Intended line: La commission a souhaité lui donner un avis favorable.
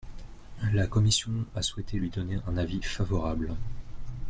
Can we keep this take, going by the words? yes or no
yes